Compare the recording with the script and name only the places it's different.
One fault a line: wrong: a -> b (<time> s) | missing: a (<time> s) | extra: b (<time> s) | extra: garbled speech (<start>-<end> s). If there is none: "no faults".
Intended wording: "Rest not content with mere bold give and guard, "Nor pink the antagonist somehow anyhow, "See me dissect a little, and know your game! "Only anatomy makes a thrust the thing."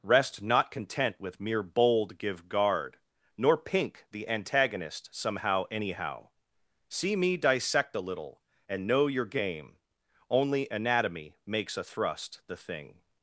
missing: and (2.5 s)